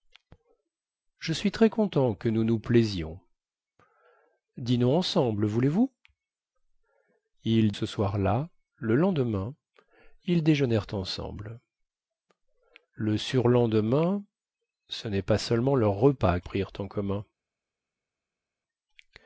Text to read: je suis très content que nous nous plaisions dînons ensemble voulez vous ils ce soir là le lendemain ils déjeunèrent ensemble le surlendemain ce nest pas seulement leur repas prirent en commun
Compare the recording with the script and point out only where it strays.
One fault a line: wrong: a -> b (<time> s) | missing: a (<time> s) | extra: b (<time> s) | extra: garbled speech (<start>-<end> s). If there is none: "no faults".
no faults